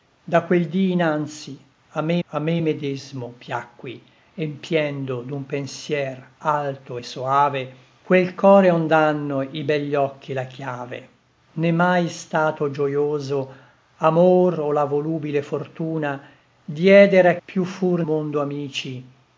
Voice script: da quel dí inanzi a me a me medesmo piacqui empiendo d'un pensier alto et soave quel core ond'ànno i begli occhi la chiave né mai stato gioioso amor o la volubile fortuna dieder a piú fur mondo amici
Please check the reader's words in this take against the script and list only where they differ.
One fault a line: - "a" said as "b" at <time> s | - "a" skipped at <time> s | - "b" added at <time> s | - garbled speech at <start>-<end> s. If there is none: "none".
none